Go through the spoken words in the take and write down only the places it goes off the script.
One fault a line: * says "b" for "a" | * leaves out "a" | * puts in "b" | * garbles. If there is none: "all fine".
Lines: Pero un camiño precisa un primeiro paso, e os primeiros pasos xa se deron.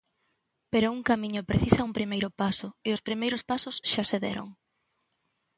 all fine